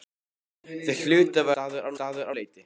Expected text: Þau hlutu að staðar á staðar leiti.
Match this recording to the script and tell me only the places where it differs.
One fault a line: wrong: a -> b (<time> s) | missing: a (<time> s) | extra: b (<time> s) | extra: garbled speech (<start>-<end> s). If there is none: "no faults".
no faults